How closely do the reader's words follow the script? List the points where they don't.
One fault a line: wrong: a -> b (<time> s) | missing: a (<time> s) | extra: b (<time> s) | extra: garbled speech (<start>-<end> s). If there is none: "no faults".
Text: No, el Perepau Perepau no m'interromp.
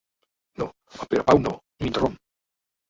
missing: Perepau (1.4 s)